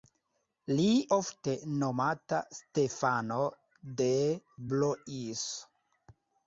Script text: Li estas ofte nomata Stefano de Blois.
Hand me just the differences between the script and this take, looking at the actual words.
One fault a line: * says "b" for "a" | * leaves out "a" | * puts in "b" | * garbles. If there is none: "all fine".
* leaves out "estas"